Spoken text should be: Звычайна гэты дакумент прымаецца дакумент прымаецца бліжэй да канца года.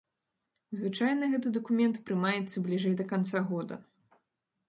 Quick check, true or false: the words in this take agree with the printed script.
false